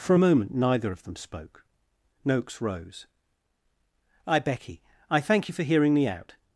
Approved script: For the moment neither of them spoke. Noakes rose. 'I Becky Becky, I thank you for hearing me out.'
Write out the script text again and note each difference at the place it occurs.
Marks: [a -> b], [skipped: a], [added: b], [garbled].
For [the -> a] moment neither of them spoke. Noakes rose. 'I Becky [skipped: Becky,] I thank you for hearing me out.'